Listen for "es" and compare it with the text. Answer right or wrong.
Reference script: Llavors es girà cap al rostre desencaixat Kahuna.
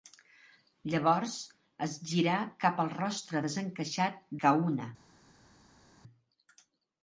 right